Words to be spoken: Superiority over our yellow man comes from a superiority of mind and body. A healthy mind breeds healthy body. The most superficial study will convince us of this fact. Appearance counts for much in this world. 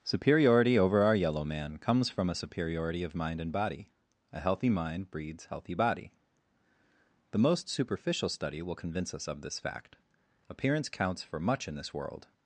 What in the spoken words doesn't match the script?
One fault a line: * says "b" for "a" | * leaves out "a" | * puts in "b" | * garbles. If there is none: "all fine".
all fine